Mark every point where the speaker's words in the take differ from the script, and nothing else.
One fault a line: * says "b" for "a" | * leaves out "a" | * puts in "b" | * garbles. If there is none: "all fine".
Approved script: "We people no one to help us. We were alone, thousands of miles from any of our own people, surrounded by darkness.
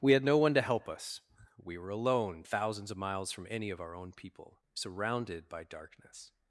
* says "had" for "people"